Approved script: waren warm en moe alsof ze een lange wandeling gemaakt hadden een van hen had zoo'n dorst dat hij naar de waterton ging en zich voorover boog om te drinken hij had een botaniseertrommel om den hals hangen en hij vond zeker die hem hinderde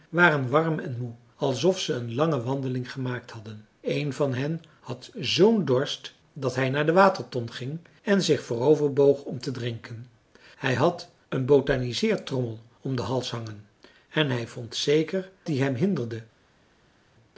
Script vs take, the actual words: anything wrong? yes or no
no